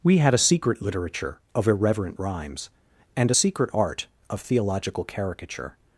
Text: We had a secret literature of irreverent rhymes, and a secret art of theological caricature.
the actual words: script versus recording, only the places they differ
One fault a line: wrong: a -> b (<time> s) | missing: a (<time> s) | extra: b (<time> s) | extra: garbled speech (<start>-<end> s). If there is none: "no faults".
no faults